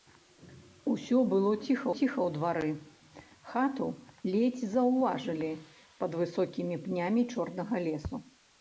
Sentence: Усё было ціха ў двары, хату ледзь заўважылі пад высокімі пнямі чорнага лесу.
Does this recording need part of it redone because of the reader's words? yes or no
yes